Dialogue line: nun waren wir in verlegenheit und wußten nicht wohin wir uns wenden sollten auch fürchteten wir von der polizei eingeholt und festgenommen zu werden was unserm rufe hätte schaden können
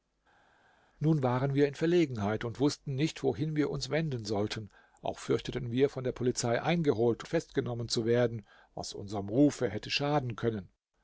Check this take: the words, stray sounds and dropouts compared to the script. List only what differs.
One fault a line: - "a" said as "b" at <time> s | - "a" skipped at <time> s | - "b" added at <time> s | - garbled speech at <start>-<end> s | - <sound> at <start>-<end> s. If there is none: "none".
- "und" skipped at 7.2 s